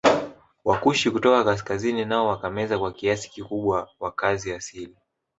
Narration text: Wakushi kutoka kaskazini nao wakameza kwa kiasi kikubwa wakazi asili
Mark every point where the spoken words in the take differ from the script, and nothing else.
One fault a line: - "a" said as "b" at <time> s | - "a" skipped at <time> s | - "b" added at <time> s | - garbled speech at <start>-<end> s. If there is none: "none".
none